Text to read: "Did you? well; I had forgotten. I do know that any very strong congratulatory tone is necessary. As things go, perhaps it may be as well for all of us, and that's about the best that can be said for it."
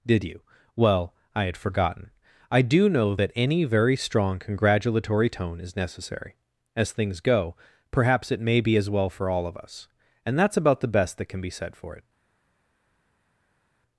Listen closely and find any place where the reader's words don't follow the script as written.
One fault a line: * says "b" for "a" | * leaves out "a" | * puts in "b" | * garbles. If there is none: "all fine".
all fine